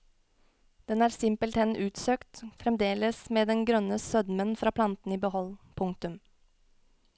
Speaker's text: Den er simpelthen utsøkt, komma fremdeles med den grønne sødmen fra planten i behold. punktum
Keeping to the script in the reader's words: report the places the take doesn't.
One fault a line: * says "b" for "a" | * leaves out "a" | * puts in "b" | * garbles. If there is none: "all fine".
* leaves out "komma"